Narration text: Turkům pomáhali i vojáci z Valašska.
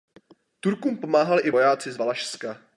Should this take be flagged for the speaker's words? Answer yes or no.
no